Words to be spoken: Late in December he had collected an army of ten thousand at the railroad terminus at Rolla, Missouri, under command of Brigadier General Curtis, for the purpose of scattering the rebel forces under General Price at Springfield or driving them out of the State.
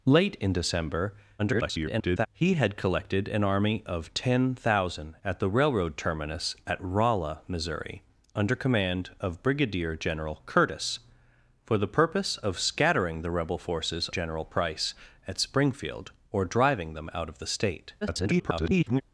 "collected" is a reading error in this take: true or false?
false